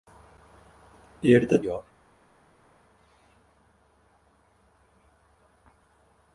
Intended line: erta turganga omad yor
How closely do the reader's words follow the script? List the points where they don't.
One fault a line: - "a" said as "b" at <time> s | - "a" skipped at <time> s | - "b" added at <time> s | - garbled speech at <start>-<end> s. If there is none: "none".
- "turganga omad" skipped at 1.6 s